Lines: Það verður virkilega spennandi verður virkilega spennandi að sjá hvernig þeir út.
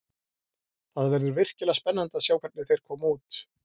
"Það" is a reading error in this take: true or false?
false